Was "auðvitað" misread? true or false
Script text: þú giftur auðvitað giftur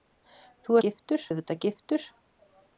false